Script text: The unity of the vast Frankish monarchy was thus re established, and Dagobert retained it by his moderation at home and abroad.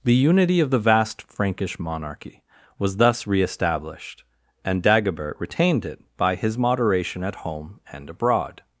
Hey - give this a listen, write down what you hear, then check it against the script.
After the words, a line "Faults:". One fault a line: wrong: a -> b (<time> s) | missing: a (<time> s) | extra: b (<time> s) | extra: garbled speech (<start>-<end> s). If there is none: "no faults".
The unity of the vast Frankish monarchy was thus re established, and Dagobert retained it by his moderation at home and abroad.
Faults:
no faults